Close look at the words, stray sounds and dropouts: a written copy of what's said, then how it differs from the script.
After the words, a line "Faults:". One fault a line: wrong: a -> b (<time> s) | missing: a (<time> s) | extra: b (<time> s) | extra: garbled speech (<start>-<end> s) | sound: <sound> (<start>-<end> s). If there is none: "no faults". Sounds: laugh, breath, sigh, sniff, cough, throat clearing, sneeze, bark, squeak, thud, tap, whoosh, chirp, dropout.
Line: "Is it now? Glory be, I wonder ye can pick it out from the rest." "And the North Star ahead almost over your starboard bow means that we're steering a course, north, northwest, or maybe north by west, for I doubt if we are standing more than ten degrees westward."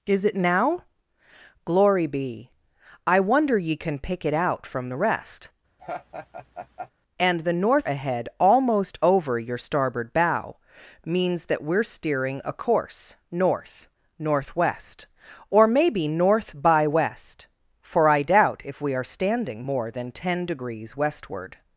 "Is it now? Glory be, I wonder ye can pick it out from the rest." "And the North Ahead almost over your starboard bow means that we're steering a course, north, northwest, or maybe north by west, for I doubt if we are standing more than ten degrees westward."
Faults:
sound: laugh (5.8-6.9 s)
missing: Star (7.9 s)